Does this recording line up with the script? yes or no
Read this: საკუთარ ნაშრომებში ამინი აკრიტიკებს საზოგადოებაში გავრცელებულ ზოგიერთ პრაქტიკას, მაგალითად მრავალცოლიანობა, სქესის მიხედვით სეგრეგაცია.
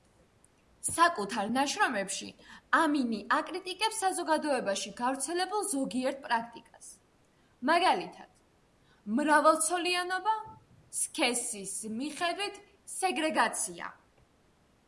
yes